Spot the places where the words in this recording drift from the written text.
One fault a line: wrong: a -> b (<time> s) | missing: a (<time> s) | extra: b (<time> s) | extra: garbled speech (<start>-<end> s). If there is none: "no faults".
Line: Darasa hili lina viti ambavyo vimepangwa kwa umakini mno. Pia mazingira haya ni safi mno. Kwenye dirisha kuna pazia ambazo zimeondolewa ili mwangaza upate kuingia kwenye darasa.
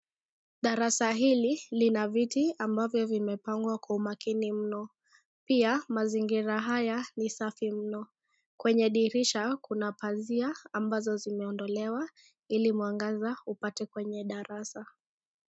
missing: kuingia (13.8 s)